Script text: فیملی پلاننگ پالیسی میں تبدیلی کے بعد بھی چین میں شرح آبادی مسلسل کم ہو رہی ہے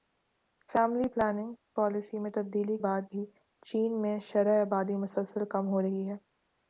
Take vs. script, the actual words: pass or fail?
fail